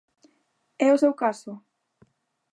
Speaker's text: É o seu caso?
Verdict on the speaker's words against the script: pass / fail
pass